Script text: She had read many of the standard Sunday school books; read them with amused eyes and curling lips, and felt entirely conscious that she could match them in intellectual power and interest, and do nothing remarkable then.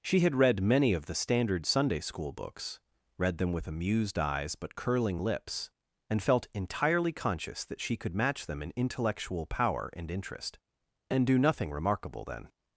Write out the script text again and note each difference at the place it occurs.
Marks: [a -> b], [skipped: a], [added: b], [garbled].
She had read many of the standard Sunday school books; read them with amused eyes [and -> but] curling lips, and felt entirely conscious that she could match them in intellectual power and interest, and do nothing remarkable then.